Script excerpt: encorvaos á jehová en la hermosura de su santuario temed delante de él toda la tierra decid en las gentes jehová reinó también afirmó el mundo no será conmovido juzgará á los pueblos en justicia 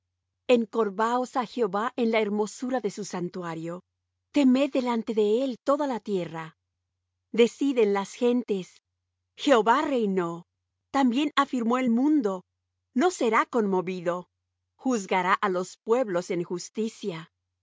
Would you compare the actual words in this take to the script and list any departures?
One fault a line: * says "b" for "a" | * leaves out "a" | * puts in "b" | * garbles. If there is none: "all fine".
all fine